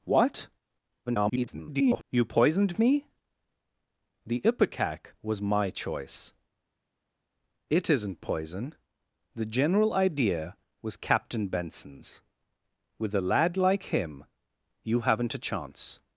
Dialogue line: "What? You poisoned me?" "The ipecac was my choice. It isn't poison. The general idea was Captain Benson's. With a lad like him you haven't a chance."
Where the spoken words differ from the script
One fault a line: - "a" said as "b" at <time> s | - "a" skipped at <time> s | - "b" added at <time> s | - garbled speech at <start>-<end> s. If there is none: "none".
- garbled speech at 1.1-2.0 s